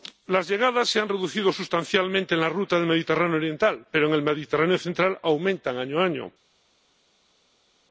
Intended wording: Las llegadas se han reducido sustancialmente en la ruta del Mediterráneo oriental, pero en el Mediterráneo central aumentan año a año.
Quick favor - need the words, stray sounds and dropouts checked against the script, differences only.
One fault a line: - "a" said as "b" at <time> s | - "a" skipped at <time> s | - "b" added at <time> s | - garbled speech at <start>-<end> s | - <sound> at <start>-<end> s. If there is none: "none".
none